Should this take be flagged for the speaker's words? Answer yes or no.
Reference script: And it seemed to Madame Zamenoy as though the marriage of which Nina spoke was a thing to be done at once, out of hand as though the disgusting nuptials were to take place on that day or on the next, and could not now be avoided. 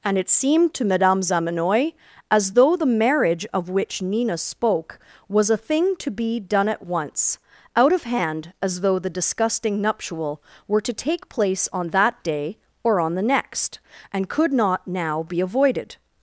yes